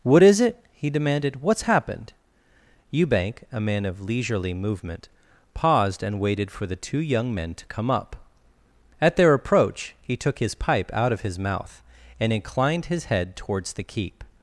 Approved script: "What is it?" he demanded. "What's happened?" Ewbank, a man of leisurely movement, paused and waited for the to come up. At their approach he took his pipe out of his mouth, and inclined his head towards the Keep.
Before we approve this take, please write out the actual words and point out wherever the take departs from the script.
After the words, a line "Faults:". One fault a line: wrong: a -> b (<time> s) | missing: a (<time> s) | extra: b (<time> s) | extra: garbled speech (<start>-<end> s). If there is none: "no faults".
"What is it?" he demanded. "What's happened?" Ewbank, a man of leisurely movement, paused and waited for the two young men to come up. At their approach he took his pipe out of his mouth, and inclined his head towards the Keep.
Faults:
extra: two young men (6.8 s)